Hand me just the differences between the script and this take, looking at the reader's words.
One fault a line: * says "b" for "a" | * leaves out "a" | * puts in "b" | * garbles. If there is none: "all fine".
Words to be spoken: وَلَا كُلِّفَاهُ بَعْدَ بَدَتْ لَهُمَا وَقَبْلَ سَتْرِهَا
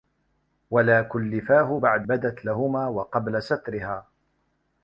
all fine